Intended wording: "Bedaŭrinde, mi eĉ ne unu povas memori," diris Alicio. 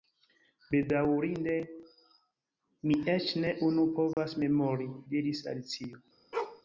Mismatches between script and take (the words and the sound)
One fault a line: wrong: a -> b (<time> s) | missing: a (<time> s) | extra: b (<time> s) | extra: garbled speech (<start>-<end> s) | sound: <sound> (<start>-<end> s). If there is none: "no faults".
sound: dropout (4.1-4.2 s)
sound: bark (6.3-6.6 s)